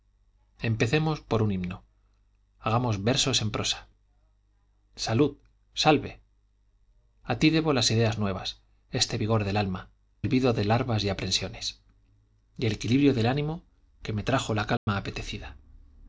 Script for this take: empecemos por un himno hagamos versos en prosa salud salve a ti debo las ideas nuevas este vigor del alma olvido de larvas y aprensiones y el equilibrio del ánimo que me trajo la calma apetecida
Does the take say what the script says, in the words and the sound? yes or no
no